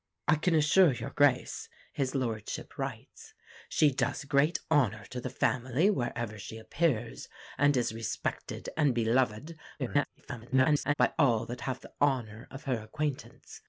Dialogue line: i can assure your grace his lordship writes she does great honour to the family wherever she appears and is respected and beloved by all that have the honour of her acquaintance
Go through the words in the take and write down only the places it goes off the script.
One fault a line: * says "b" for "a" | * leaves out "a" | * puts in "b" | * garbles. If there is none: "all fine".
* garbles